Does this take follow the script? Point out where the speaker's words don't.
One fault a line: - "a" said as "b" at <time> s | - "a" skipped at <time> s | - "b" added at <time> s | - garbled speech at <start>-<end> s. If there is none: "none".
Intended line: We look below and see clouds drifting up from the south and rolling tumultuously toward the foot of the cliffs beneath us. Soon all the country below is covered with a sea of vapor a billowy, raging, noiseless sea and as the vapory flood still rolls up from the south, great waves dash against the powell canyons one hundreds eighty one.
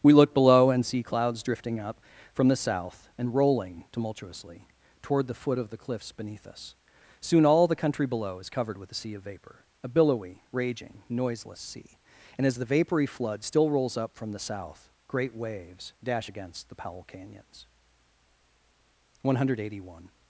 - "hundreds" said as "hundred" at 19.4 s